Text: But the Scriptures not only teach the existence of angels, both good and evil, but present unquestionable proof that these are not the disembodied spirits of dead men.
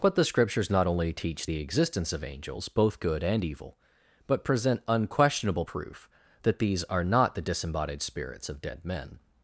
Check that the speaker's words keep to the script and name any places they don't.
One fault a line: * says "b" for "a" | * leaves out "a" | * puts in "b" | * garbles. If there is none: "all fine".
all fine